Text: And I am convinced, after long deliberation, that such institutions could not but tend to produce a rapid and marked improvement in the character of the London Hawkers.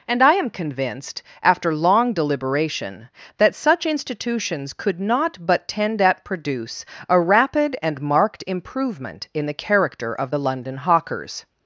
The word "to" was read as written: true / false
false